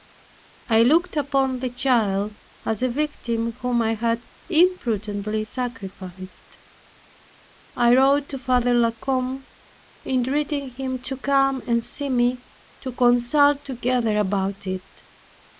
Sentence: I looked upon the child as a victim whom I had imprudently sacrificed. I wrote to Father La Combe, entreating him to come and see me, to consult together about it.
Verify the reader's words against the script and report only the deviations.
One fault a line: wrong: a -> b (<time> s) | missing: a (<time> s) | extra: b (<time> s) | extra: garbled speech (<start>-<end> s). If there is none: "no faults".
no faults